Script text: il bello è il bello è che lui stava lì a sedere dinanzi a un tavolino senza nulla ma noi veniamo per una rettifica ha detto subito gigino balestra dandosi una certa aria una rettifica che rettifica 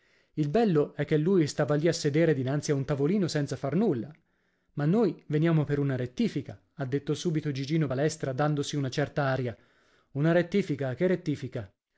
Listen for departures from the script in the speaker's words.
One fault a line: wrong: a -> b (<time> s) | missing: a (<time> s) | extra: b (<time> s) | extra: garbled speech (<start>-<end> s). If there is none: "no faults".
missing: il bello è (1.1 s)
extra: far (3.5 s)